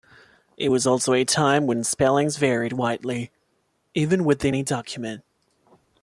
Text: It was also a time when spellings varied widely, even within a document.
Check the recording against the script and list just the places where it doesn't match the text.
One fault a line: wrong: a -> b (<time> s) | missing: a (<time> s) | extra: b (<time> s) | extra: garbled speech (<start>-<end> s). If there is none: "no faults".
no faults